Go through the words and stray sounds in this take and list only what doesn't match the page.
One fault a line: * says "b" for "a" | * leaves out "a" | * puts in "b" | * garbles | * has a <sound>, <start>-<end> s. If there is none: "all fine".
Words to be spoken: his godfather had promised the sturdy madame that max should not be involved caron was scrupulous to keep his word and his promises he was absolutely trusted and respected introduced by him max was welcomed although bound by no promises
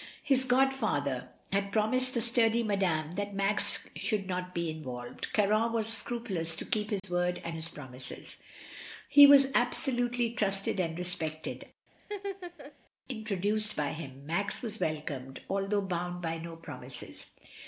* has a dropout, 7.0-7.0 s
* has a laugh, 12.0-12.7 s